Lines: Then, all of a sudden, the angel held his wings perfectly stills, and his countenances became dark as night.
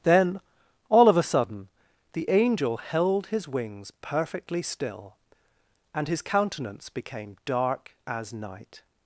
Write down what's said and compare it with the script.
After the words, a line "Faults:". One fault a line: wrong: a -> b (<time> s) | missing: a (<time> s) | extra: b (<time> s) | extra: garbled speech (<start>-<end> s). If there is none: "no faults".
Then, all of a sudden, the angel held his wings perfectly still, and his countenance became dark as night.
Faults:
wrong: stills -> still (4.6 s)
wrong: countenances -> countenance (6.2 s)